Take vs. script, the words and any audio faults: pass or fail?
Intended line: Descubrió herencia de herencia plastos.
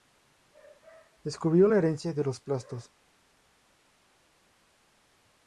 fail